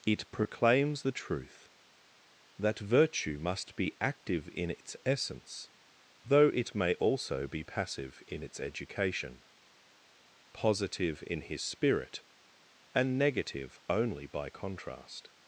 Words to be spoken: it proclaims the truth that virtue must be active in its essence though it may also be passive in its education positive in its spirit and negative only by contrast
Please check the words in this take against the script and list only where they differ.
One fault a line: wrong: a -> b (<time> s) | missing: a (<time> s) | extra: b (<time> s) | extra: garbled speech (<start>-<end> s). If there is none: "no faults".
wrong: its -> his (11.4 s)